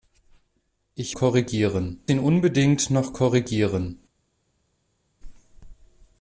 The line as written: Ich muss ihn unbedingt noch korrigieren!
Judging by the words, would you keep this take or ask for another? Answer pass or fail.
fail